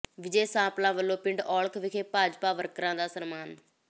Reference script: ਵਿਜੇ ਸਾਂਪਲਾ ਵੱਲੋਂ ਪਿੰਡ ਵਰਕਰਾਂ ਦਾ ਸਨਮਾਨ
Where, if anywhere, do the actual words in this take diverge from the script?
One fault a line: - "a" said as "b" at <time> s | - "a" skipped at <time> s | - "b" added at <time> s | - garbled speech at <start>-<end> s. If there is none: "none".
- "ਔਲਖ ਵਿਖੇ ਭਾਜਪਾ" added at 1.4 s